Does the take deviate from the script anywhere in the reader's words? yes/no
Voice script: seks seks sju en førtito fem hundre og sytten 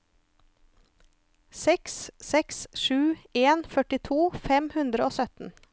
no